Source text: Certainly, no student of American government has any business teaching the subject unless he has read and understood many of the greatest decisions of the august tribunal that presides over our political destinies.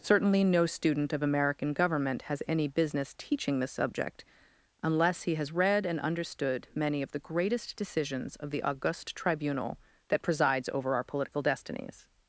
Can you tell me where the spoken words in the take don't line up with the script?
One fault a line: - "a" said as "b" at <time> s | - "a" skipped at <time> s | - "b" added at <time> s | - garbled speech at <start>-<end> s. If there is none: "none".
none